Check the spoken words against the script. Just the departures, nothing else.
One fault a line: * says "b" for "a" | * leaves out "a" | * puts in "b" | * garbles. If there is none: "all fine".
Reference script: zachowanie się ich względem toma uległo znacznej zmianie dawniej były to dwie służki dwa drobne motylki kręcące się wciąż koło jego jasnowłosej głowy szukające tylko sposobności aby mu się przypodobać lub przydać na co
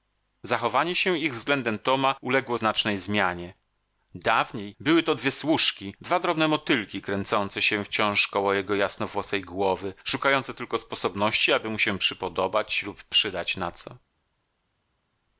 all fine